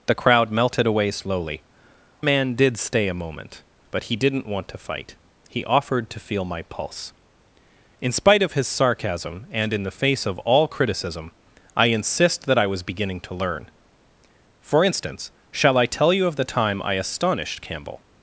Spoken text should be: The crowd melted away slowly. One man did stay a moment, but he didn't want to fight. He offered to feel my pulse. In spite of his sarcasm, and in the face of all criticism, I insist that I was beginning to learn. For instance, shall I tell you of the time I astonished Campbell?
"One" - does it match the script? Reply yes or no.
no